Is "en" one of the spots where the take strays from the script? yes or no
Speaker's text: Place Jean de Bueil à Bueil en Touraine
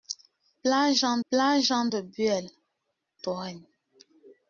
yes